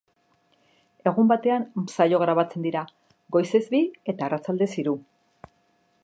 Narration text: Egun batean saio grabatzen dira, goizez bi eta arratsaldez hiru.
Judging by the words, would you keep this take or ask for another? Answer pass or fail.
pass